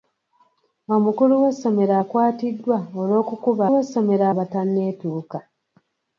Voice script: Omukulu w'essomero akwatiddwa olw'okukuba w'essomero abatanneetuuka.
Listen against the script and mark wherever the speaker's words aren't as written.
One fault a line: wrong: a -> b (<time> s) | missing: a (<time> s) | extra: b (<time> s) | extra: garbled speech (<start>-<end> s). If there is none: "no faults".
no faults